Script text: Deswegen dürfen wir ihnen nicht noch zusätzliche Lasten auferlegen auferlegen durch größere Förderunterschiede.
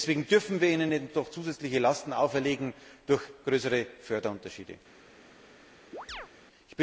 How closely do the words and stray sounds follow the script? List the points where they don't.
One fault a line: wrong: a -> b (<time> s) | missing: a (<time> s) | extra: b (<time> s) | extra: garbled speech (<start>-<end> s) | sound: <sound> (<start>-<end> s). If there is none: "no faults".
missing: auferlegen (2.8 s)
sound: chirp (5.9-6.3 s)